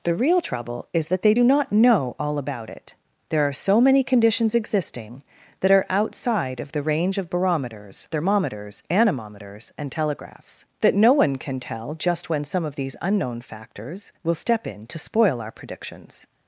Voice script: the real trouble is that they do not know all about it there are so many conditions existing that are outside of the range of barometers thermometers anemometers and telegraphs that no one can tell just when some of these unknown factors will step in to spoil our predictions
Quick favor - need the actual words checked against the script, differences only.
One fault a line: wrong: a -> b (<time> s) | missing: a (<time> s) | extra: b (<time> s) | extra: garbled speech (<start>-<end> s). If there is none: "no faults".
no faults